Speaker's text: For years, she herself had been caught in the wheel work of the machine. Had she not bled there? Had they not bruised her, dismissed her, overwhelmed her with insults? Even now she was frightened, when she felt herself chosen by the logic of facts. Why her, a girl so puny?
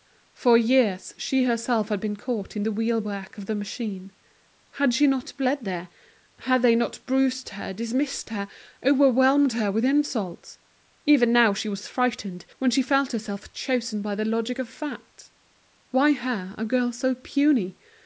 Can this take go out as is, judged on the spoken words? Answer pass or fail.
pass